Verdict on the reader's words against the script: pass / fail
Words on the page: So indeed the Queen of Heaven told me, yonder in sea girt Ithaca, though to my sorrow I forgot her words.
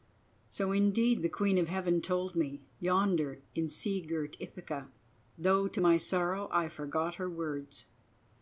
pass